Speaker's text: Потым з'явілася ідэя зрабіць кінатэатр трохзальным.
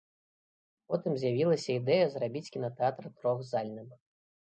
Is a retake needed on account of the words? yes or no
no